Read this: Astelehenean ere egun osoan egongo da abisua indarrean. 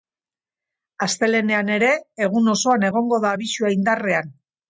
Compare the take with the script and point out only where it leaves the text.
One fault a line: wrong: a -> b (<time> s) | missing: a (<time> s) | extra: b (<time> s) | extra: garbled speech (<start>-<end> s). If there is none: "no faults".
no faults